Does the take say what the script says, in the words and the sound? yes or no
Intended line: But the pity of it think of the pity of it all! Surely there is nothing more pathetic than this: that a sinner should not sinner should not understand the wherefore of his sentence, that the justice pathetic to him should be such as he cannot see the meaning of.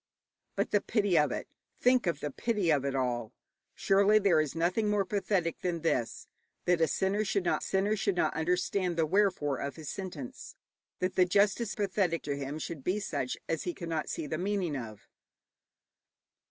yes